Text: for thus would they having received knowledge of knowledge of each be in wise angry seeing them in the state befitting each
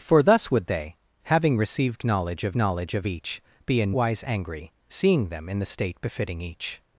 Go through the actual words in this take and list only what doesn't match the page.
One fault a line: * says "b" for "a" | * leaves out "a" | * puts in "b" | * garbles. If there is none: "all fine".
all fine